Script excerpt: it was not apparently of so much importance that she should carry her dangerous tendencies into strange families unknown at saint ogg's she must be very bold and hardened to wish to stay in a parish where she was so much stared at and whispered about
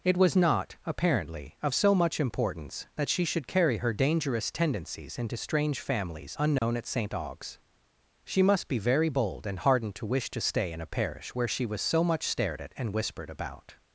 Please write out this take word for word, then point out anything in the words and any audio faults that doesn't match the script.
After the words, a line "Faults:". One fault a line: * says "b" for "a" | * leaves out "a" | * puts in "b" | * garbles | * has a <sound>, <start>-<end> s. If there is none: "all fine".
it was not apparently of so much importance that she should carry her dangerous tendencies into strange families unknown at saint ogg's she must be very bold and hardened to wish to stay in a parish where she was so much stared at and whispered about
Faults:
* has a dropout, 6.6-6.6 s